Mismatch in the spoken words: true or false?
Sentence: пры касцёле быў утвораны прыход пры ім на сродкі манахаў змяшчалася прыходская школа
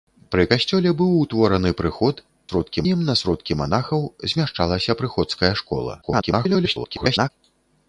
true